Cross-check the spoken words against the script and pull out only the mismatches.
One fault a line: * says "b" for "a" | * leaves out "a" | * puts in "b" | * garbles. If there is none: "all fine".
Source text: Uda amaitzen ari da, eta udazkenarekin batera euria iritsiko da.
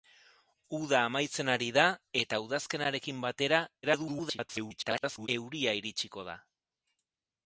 * garbles